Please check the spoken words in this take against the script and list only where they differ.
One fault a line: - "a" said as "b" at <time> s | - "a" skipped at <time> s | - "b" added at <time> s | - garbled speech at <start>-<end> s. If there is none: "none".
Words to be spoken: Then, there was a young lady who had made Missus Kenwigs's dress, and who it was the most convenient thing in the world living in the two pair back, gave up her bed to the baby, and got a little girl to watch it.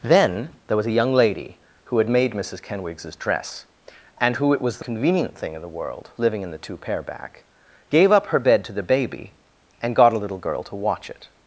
- "most" skipped at 4.8 s